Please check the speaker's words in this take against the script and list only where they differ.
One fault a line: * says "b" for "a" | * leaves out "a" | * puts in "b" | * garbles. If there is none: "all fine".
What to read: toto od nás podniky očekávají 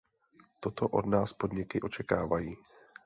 all fine